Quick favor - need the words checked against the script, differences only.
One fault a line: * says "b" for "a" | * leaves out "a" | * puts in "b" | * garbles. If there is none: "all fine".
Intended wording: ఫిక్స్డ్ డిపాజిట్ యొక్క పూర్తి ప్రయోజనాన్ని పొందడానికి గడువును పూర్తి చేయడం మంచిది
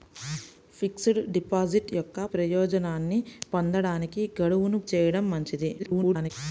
* leaves out "పూర్తి"
* leaves out "పూర్తి"
* garbles